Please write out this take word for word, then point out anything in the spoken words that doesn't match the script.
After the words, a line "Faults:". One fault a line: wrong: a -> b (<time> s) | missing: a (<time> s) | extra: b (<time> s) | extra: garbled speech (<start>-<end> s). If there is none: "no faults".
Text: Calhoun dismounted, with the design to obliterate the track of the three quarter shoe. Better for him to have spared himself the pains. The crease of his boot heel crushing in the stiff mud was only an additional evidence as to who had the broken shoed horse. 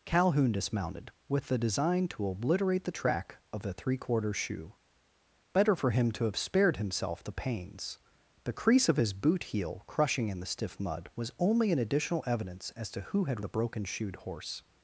Calhoun dismounted, with the design to obliterate the track of the three quarter shoe. Better for him to have spared himself the pains. The crease of his boot heel crushing in the stiff mud was only an additional evidence as to who had the broken shoed horse.
Faults:
no faults